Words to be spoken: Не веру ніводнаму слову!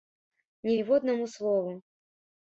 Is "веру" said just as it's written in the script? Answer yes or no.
no